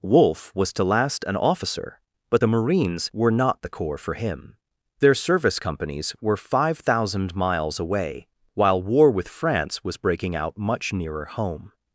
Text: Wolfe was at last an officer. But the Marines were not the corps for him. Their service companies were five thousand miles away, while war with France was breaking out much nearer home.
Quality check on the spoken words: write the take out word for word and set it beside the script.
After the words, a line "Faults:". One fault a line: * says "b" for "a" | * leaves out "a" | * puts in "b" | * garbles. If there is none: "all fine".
Wolfe was to last an officer. But the Marines were not the corps for him. Their service companies were five thousand miles away, while war with France was breaking out much nearer home.
Faults:
* says "to" for "at"